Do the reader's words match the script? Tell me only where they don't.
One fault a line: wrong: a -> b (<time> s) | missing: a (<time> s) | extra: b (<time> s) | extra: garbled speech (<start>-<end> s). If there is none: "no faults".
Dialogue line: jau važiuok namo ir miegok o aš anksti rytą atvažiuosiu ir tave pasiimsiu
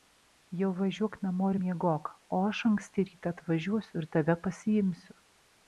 no faults